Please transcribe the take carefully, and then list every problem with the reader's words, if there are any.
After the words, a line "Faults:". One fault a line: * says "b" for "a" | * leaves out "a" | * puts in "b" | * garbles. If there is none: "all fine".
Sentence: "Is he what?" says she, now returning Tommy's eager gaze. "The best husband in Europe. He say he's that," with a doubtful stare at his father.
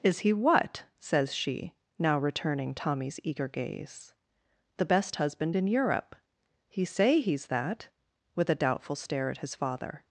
"Is he what?" says she, now returning Tommy's eager gaze. "The best husband in Europe. He say he's that," with a doubtful stare at his father.
Faults:
all fine